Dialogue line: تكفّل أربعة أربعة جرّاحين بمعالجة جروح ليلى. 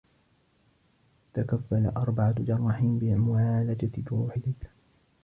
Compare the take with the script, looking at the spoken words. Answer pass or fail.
fail